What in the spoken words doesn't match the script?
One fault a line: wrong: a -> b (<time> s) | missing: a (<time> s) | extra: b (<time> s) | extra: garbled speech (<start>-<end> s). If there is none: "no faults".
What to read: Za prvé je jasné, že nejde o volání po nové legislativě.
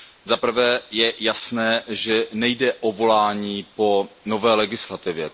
no faults